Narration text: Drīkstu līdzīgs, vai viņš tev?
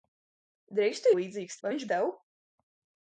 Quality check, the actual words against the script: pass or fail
pass